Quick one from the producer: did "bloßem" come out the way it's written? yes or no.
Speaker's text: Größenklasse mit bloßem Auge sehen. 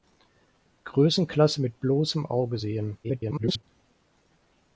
yes